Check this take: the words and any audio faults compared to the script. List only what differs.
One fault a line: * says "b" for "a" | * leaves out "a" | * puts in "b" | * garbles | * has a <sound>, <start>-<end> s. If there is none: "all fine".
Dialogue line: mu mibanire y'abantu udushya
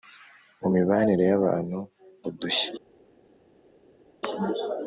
all fine